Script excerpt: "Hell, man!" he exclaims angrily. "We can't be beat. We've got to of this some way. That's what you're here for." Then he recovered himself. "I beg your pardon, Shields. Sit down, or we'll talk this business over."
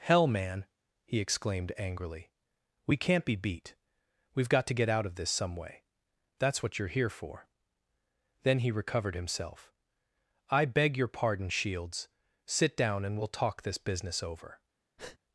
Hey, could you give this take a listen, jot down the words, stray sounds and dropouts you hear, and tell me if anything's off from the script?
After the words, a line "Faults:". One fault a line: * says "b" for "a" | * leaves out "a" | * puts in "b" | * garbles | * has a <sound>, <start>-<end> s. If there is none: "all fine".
"Hell, man!" he exclaimed angrily. "We can't be beat. We've got to get out of this some way. That's what you're here for." Then he recovered himself. "I beg your pardon, Shields. Sit down, and we'll talk this business over."
Faults:
* says "exclaimed" for "exclaims"
* puts in "get out"
* says "and" for "or"
* has a breath, 15.0-15.2 s